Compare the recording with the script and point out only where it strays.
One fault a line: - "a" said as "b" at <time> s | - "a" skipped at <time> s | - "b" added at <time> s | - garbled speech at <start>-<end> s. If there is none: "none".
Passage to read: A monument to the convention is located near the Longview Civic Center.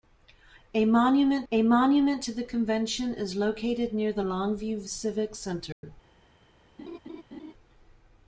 - "a monument" added at 1.5 s